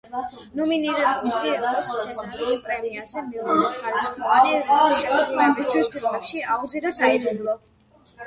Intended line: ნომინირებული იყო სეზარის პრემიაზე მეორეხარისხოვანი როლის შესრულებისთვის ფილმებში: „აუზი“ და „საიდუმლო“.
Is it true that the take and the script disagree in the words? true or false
false